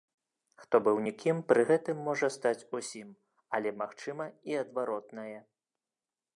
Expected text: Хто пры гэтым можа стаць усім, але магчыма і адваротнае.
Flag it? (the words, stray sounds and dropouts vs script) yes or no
yes